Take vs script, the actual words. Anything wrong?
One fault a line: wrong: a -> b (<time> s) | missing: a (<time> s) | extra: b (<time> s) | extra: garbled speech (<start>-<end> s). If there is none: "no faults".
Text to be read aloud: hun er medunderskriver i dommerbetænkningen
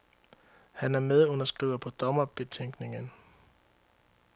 wrong: hun -> han (0.7 s)
wrong: i -> på (1.8 s)